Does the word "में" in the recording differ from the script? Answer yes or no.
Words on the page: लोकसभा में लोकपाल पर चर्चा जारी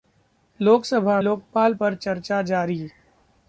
yes